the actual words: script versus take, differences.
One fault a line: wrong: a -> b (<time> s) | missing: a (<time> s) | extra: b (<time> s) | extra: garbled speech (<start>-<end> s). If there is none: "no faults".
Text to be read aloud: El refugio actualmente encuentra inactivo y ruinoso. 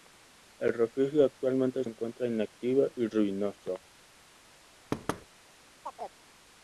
no faults